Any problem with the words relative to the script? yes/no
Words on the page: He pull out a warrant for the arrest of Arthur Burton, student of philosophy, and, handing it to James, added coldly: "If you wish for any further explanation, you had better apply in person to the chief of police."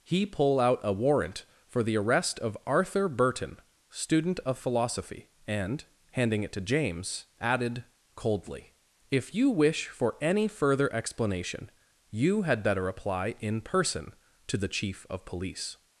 no